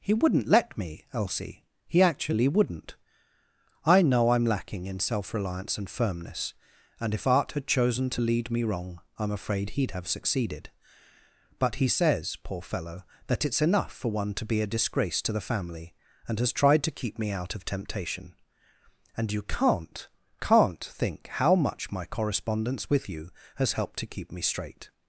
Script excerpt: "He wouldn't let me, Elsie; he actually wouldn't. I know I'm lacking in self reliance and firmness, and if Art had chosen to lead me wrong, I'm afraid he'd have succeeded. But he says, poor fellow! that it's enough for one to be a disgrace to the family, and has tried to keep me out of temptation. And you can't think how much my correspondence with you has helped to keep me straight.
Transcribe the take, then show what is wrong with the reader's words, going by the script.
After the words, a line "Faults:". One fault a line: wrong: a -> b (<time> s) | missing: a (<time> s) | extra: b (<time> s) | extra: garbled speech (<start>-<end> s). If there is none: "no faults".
"He wouldn't let me, Elsie; he actually wouldn't. I know I'm lacking in self reliance and firmness, and if Art had chosen to lead me wrong, I'm afraid he'd have succeeded. But he says, poor fellow! that it's enough for one to be a disgrace to the family, and has tried to keep me out of temptation. And you can't can't think how much my correspondence with you has helped to keep me straight.
Faults:
extra: can't (20.4 s)